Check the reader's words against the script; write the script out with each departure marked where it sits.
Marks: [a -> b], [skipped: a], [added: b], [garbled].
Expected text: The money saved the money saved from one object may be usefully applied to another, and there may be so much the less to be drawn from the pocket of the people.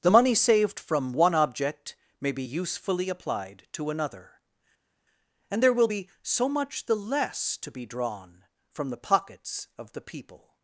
The money saved [skipped: the money saved] from one object may be usefully applied to another, and there [may -> will] be so much the less to be drawn from the [pocket -> pockets] of the people.